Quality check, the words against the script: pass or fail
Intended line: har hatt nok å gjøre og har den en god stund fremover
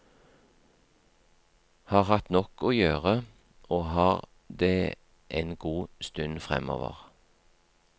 fail